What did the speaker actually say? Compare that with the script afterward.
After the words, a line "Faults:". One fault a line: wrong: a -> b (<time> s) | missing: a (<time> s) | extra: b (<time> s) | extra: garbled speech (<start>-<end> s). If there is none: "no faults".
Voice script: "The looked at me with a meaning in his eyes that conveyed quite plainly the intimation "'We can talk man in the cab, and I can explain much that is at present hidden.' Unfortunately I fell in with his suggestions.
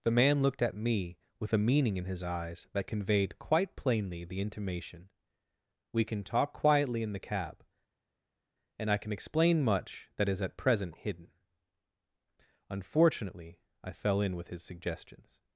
"The man looked at me with a meaning in his eyes that conveyed quite plainly the intimation "'We can talk quietly in the cab, and I can explain much that is at present hidden.' Unfortunately I fell in with his suggestions.
Faults:
extra: man (0.1 s)
wrong: man -> quietly (6.5 s)